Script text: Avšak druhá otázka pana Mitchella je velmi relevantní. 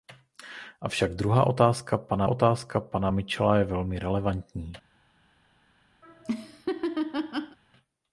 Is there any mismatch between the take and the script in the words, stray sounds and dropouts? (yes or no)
yes